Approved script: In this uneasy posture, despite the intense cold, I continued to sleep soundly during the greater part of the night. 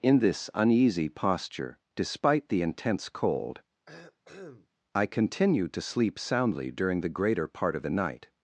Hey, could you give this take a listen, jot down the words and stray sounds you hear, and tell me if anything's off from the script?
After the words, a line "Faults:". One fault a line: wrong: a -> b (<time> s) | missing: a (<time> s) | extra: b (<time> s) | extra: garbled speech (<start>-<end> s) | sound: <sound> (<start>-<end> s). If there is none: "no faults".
In this uneasy posture, despite the intense cold, I continued to sleep soundly during the greater part of the night.
Faults:
sound: cough (3.9-4.7 s)